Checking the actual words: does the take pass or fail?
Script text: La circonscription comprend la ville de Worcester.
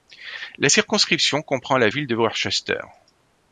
pass